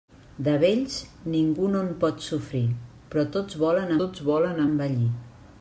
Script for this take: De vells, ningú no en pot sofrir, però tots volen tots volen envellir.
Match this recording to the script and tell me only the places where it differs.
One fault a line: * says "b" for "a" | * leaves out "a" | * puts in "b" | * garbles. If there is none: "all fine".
all fine